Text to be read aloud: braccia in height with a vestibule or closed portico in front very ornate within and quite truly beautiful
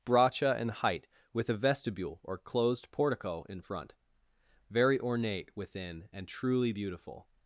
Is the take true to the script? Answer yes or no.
no